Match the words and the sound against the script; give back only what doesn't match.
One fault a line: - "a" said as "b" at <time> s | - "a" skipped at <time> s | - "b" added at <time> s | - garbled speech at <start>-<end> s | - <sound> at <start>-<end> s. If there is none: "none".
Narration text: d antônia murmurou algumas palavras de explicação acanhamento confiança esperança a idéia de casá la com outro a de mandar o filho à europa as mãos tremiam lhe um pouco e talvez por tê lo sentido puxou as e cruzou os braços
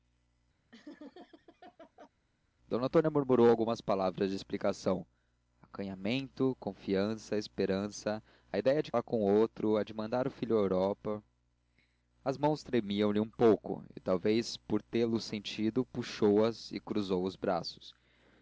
- laugh at 0.7-2.1 s
- "casá" skipped at 8.9 s